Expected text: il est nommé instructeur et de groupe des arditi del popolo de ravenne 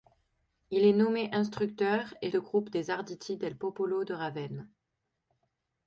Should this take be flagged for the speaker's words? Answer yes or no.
no